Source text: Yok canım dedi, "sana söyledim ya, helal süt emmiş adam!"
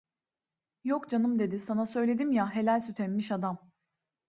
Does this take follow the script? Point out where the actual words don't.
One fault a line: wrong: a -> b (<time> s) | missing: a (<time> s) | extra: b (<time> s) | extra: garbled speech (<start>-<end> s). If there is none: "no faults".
no faults